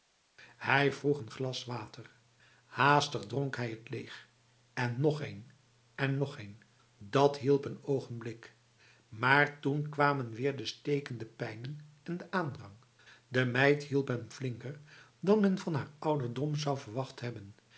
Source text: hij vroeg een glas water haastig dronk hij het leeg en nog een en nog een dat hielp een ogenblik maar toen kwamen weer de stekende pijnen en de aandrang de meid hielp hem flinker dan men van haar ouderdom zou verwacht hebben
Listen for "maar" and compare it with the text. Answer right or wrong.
right